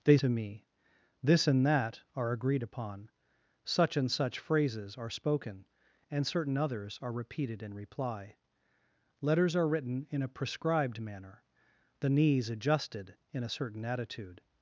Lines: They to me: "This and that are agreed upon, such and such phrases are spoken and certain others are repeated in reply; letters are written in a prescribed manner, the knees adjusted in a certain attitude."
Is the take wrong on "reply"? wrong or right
right